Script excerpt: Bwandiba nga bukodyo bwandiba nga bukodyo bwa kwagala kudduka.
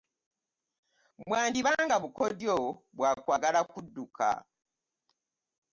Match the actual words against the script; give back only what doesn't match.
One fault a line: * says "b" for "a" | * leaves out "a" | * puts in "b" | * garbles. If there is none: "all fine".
* leaves out "bwandiba nga bukodyo"